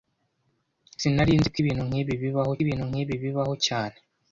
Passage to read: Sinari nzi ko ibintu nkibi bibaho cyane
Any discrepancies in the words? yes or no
yes